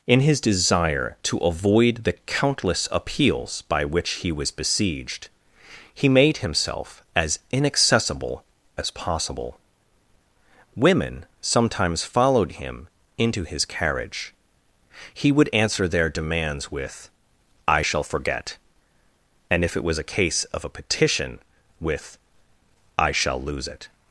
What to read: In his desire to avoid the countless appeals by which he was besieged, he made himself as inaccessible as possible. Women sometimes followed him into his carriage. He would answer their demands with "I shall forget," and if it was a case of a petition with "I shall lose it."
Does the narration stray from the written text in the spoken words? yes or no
no